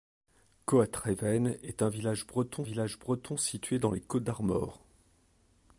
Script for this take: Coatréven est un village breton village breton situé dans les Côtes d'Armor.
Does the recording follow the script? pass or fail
pass